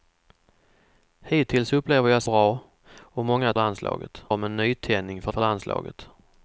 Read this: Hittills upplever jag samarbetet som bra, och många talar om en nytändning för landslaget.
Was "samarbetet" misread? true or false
true